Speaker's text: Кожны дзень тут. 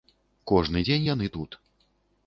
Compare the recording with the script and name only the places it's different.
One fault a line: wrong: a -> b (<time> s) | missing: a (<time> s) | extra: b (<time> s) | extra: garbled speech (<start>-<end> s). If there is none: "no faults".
extra: яны (1.1 s)